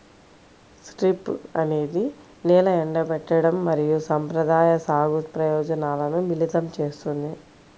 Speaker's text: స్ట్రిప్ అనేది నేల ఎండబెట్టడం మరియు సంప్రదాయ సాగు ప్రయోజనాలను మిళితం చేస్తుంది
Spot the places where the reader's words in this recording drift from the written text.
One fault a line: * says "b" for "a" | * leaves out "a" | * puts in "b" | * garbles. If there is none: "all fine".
all fine